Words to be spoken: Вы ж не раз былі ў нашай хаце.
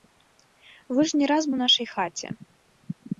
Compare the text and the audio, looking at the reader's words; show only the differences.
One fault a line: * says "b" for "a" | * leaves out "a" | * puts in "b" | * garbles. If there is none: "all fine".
* leaves out "былі"